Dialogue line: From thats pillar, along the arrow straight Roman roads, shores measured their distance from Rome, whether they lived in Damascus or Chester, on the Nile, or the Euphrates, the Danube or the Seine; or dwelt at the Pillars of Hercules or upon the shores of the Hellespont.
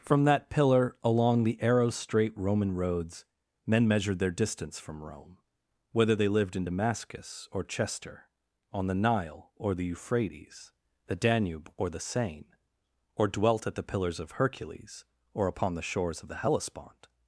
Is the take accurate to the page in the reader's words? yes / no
no